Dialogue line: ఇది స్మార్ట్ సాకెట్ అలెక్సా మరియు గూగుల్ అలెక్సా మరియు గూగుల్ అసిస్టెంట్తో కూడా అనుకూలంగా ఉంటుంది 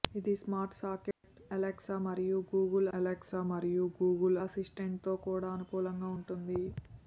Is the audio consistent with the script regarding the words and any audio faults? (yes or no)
no